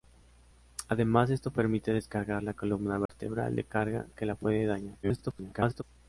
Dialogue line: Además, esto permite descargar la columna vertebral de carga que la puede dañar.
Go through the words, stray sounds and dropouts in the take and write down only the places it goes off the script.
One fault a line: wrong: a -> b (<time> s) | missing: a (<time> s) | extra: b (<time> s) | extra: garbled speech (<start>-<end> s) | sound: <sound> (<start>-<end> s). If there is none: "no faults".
sound: dropout (3.1-3.1 s)
extra: garbled speech (5.0-5.8 s)